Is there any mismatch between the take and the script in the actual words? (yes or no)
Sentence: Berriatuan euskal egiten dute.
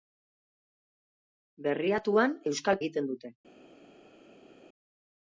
no